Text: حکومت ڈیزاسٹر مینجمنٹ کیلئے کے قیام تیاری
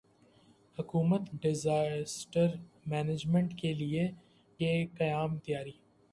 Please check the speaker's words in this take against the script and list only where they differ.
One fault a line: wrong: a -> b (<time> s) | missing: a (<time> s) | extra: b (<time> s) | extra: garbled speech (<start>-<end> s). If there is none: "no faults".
no faults